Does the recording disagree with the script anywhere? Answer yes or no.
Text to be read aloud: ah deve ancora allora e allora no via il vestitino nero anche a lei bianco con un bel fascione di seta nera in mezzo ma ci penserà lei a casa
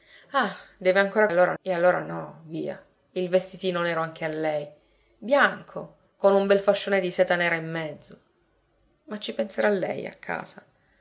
no